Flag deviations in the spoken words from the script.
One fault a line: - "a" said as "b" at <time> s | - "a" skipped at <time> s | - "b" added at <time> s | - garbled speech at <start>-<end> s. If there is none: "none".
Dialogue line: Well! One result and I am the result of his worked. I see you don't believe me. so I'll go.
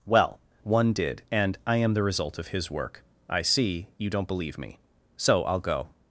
- "result" said as "did" at 0.9 s
- "worked" said as "work" at 2.7 s